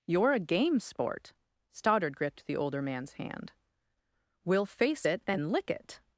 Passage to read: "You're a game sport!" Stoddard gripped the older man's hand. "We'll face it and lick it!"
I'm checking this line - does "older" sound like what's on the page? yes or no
yes